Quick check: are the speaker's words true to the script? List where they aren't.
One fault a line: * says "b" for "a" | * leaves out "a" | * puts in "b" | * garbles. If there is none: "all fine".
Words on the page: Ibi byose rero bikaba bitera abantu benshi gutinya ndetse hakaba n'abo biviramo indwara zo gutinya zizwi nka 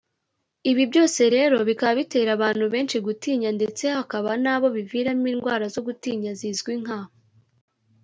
all fine